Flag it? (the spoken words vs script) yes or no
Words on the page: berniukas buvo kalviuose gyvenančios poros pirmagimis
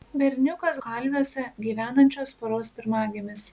yes